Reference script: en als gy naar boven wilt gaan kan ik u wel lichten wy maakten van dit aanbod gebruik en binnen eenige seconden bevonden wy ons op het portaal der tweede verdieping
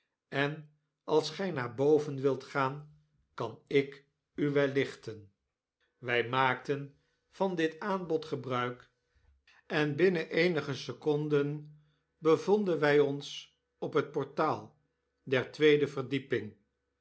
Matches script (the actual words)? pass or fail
pass